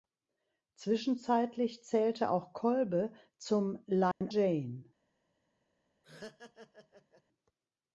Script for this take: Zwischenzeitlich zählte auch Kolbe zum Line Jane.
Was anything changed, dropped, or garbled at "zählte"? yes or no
no